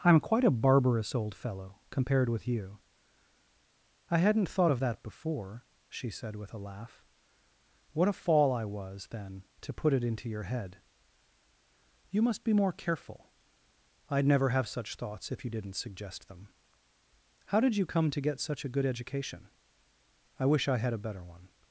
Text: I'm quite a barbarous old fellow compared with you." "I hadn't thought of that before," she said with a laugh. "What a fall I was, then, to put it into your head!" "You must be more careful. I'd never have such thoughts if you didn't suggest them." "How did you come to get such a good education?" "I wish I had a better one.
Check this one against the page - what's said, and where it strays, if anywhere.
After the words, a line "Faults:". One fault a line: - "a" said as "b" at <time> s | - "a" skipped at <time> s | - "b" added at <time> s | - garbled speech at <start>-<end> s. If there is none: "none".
I'm quite a barbarous old fellow compared with you." "I hadn't thought of that before," she said with a laugh. "What a fall I was, then, to put it into your head!" "You must be more careful. I'd never have such thoughts if you didn't suggest them." "How did you come to get such a good education?" "I wish I had a better one.
Faults:
none